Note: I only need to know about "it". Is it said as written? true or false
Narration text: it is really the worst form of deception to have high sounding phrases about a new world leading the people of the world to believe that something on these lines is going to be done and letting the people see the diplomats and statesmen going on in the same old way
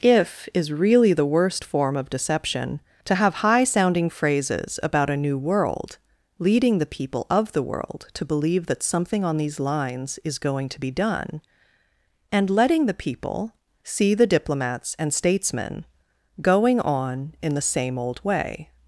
false